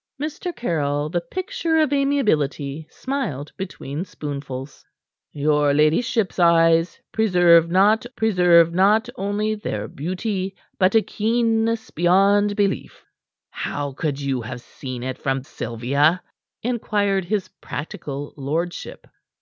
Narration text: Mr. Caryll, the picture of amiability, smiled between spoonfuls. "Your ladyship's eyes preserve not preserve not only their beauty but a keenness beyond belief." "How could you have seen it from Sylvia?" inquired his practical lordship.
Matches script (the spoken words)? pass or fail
pass